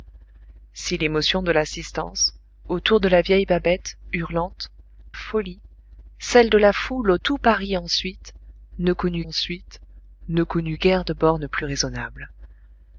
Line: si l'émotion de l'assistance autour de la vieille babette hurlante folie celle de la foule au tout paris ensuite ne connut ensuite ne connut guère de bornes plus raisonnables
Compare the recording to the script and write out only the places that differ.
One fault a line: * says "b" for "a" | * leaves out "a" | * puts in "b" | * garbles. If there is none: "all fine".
all fine